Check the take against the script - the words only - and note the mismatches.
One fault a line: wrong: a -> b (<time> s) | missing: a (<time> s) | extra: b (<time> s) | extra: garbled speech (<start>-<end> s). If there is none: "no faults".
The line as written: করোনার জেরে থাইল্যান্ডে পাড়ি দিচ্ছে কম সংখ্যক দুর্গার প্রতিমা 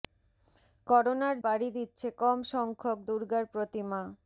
missing: জেরে থাইল্যান্ডে (1.4 s)